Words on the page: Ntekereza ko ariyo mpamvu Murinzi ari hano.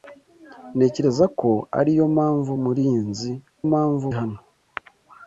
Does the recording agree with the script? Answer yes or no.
no